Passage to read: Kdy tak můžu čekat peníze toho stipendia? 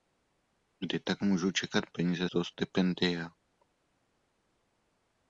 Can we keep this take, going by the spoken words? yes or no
yes